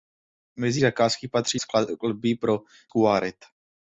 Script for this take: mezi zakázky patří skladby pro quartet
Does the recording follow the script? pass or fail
pass